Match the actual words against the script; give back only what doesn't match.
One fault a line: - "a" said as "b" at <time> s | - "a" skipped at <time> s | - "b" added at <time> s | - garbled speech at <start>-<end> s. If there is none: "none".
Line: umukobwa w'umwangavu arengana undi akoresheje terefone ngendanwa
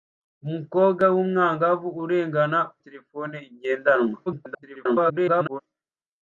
- "undi akoresheje" skipped at 2.6 s
- garbled speech at 4.3-5.6 s